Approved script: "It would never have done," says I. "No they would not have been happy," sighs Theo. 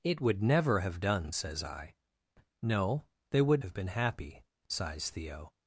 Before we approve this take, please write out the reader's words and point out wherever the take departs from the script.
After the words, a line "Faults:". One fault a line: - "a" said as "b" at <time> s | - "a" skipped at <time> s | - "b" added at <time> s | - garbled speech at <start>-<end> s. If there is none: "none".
"It would never have done," says I. "No they would have been happy," sighs Theo.
Faults:
- "not" skipped at 3.6 s